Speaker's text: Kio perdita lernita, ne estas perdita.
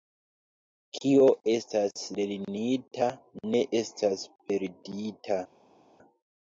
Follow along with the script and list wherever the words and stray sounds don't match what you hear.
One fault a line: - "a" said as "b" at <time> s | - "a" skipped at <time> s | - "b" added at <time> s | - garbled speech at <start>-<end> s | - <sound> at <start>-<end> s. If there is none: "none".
- "perdita" said as "estas" at 1.5 s